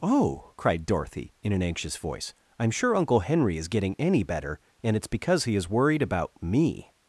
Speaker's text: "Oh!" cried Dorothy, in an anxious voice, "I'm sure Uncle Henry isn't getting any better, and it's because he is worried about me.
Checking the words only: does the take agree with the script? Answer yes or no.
no